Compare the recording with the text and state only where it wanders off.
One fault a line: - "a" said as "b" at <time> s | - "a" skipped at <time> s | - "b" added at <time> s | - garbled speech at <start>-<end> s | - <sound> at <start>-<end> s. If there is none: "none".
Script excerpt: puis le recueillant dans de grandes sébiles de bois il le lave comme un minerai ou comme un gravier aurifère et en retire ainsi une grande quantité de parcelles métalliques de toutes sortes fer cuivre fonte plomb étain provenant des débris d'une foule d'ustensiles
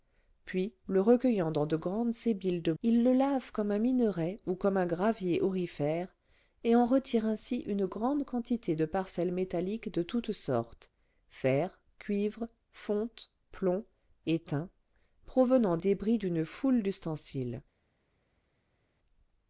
- "bois" skipped at 2.7 s
- "des" skipped at 15.8 s